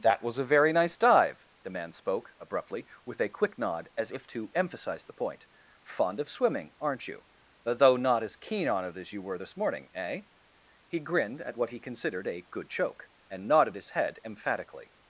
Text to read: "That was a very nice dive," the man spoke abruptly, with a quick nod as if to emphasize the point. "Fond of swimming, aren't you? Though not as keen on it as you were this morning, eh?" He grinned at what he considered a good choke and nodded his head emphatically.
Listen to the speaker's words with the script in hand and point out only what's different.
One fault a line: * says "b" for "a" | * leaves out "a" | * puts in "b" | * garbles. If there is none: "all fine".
all fine